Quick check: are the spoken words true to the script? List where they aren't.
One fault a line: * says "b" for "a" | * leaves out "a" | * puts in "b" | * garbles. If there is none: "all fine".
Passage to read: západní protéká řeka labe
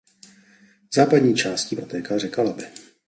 * puts in "částí"